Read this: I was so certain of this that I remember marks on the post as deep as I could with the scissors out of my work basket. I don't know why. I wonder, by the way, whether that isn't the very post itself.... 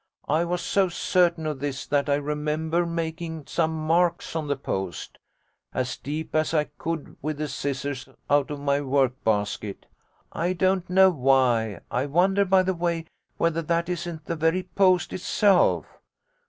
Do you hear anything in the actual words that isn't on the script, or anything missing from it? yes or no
yes